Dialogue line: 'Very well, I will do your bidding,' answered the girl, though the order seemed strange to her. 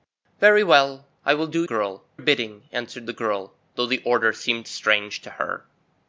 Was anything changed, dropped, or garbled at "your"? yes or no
yes